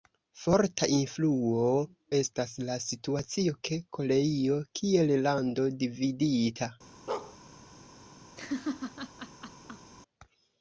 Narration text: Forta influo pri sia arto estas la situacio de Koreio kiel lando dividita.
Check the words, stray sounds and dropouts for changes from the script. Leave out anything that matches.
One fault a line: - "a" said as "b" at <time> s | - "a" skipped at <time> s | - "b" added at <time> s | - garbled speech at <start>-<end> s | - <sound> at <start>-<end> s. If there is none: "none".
- "pri sia arto" skipped at 1.6 s
- bark at 7.1-7.4 s
- laugh at 8.4-9.9 s